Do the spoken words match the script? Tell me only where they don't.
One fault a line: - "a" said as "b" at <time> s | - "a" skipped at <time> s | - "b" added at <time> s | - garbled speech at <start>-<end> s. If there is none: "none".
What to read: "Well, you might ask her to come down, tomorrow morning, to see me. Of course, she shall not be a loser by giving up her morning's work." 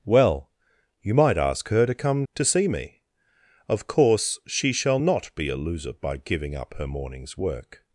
- "down tomorrow morning" skipped at 2.2 s